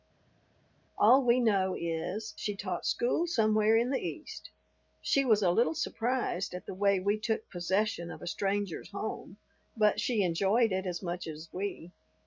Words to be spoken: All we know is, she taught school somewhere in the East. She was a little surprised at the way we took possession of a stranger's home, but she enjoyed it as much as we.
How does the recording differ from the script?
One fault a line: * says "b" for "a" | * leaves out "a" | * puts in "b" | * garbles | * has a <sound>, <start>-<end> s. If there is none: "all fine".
all fine